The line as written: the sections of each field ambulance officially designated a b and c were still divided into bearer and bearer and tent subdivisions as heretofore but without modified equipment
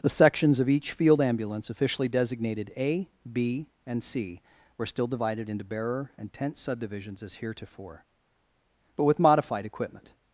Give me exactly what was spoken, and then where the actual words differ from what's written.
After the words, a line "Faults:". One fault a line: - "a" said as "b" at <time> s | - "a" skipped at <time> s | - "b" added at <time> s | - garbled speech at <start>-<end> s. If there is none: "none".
the sections of each field ambulance officially designated a b and c were still divided into bearer and tent subdivisions as heretofore but with modified equipment
Faults:
- "bearer and" skipped at 6.3 s
- "without" said as "with" at 9.0 s